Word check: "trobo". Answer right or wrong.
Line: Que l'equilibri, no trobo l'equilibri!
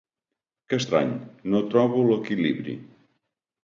right